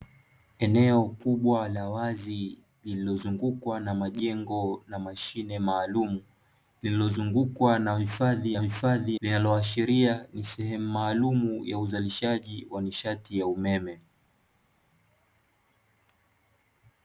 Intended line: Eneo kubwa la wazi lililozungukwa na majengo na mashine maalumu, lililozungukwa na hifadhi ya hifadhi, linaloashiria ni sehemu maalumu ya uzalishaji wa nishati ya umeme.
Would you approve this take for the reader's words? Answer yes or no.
yes